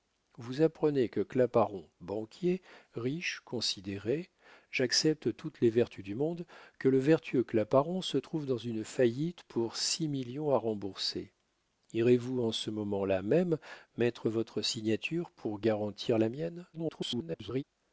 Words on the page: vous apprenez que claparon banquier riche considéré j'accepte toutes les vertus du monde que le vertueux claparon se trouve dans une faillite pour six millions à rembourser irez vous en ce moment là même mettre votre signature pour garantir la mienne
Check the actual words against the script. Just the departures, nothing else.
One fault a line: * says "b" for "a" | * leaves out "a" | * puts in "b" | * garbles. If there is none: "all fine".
* garbles